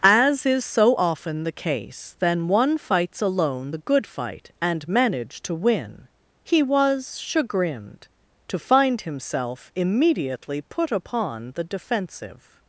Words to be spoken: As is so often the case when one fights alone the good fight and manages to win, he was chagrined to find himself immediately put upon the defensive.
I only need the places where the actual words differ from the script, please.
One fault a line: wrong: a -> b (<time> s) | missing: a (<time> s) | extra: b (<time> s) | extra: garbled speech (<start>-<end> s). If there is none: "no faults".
wrong: when -> then (2.2 s)
wrong: manages -> manage (4.9 s)